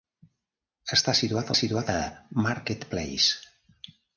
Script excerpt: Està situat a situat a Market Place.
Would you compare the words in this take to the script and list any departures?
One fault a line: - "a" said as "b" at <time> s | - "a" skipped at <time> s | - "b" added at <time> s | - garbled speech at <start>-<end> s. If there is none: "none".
none